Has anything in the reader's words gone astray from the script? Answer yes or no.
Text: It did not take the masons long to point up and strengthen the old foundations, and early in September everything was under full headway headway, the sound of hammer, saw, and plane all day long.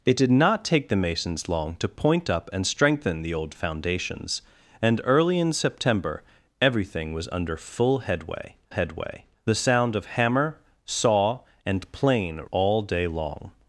no